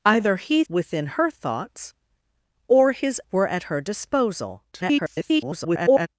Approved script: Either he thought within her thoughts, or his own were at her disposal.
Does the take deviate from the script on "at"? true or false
false